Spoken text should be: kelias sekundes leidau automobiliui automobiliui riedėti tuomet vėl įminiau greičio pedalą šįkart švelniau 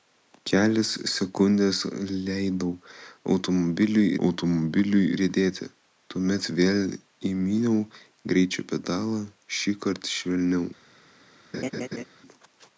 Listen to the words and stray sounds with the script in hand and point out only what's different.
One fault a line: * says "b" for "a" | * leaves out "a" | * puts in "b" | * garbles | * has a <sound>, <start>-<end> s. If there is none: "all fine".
* has a laugh, 11.5-12.0 s